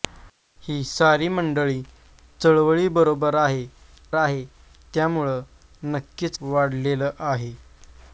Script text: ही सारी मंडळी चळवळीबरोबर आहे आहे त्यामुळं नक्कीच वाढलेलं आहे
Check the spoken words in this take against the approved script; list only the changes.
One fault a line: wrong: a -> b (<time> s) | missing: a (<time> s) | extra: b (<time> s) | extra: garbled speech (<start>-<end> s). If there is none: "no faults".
no faults